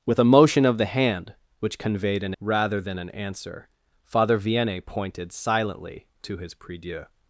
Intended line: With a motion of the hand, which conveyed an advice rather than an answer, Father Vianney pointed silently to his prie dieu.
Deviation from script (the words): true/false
true